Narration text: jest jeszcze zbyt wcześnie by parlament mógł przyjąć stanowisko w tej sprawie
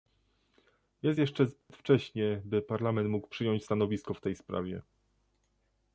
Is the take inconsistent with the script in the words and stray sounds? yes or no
yes